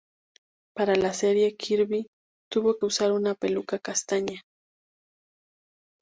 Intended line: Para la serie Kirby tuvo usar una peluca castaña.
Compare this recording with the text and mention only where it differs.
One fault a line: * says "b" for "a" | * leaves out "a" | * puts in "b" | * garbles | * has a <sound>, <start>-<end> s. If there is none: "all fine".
all fine